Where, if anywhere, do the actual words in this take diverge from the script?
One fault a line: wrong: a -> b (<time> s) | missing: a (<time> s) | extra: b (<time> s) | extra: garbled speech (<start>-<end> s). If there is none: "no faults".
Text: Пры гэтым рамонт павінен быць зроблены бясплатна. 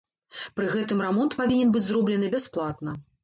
no faults